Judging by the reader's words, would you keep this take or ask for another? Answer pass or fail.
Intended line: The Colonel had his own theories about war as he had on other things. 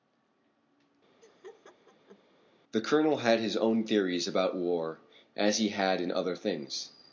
fail